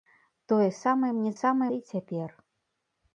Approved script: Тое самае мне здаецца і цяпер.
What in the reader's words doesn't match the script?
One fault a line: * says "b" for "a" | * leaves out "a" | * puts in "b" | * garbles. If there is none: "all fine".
* says "самае" for "здаецца"